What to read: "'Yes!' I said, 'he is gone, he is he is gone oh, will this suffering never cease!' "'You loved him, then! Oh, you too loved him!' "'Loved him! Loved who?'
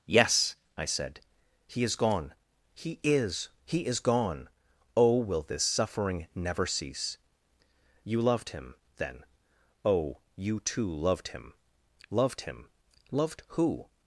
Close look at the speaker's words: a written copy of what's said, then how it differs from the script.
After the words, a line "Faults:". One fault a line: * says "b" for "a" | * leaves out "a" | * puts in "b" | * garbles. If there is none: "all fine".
"'Yes!' I said, 'he is gone, he is he is gone oh, will this suffering never cease!' "'You loved him, then! Oh, you too loved him!' "'Loved him! Loved who?'
Faults:
all fine